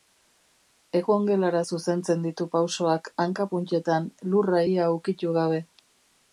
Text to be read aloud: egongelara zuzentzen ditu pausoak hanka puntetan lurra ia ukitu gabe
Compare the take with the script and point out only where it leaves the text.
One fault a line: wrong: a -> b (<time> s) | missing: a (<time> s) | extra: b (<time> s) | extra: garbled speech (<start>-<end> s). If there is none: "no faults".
no faults